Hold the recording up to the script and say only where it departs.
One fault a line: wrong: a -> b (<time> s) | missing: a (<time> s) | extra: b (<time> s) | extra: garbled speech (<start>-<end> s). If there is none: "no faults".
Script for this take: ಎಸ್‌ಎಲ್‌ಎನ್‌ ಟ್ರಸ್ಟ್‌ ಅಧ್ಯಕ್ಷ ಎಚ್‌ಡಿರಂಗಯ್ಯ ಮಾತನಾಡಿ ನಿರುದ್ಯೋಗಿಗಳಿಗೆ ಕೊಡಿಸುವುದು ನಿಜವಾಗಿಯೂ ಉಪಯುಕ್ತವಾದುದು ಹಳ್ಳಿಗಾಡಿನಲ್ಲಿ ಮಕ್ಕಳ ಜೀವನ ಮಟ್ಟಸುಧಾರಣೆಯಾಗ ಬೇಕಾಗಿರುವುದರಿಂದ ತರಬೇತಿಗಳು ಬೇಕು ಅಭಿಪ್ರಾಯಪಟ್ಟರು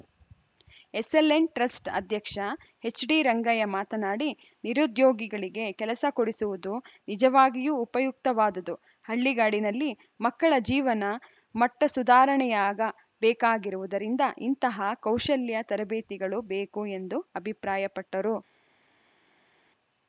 extra: ಕೆಲಸ (5.7 s)
extra: ಇಂತಹ ಕೌಶಲ್ಯ (14.4 s)
extra: ಎಂದು (17.0 s)